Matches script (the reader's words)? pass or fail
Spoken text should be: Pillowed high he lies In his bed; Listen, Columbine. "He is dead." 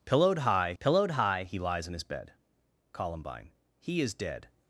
fail